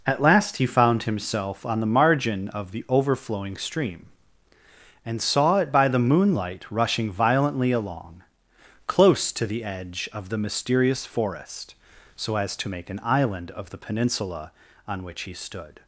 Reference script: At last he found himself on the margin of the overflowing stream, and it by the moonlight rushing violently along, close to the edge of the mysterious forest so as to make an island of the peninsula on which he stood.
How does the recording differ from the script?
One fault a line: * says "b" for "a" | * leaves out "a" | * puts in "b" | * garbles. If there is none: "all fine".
* puts in "saw"